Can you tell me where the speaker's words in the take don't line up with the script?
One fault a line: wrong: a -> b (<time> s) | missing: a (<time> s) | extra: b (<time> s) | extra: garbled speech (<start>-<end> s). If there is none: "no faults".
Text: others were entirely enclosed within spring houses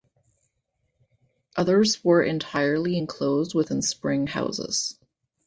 no faults